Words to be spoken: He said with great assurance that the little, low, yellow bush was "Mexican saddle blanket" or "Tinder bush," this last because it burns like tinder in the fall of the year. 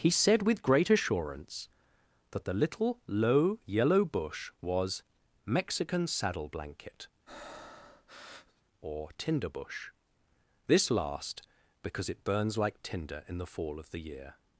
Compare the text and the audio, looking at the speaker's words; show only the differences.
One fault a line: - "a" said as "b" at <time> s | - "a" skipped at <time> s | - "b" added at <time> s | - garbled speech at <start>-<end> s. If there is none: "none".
none